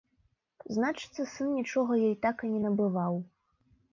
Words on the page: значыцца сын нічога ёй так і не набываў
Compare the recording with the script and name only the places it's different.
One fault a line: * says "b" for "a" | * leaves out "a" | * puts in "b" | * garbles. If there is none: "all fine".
all fine